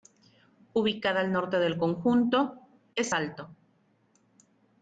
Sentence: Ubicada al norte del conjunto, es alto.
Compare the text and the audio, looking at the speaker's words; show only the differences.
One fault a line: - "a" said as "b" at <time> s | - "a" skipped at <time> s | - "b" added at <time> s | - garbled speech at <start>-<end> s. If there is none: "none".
none